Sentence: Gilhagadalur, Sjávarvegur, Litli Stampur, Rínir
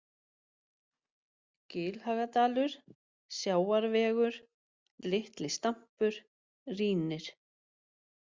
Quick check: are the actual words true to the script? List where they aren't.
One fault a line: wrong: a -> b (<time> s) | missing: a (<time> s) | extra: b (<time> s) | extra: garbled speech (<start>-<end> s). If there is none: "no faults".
no faults